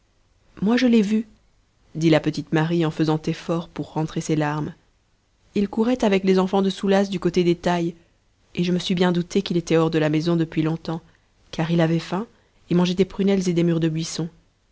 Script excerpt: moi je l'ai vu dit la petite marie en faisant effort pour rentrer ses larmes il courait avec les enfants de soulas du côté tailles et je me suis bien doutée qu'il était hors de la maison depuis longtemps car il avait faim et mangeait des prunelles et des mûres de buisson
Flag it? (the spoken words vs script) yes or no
yes